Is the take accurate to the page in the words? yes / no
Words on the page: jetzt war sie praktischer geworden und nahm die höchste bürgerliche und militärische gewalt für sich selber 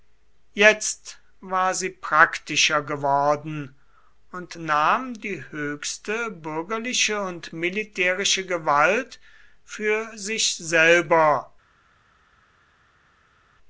yes